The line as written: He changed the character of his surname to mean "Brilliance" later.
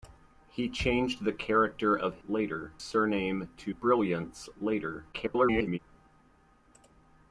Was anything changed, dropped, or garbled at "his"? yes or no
yes